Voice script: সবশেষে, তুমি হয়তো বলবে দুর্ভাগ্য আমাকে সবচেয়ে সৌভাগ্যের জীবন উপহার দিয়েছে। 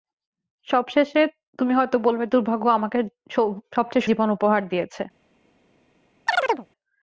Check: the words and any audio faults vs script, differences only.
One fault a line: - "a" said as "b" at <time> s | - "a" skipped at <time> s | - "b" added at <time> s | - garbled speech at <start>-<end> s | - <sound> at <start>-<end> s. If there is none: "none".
- "সৌভাগ্যের" skipped at 4.0 s
- chirp at 6.3-6.7 s